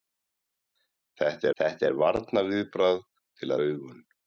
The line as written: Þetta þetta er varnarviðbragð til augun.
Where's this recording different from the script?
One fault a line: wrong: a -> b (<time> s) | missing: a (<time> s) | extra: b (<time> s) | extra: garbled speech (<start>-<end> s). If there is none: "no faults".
no faults